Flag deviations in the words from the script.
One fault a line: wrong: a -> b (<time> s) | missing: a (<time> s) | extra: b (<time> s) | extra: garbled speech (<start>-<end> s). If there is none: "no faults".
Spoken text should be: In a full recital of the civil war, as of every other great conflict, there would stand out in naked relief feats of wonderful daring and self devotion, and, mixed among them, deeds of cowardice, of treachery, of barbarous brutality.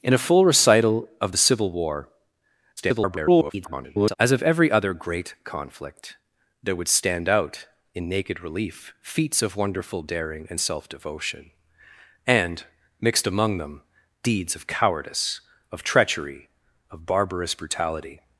extra: garbled speech (2.8-4.2 s)